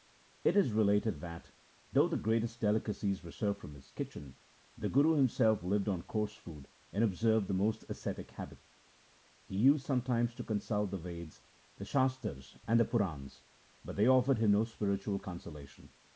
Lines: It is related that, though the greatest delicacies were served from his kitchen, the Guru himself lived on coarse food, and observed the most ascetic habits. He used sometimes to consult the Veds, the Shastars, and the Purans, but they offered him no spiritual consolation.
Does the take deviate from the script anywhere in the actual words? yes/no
no